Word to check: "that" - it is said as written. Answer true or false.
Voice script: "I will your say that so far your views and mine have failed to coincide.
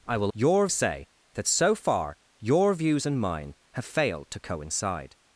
true